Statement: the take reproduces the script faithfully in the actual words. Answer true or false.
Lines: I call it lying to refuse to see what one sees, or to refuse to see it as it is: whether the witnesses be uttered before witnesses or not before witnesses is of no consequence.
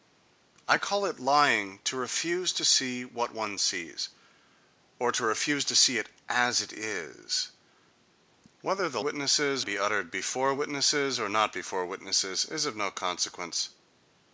true